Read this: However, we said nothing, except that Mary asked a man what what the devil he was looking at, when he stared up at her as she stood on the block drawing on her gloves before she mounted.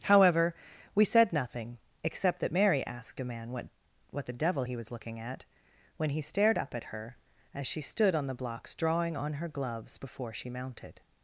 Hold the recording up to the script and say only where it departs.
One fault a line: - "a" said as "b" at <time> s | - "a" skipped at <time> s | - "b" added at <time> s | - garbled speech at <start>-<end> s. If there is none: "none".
- "block" said as "blocks" at 8.3 s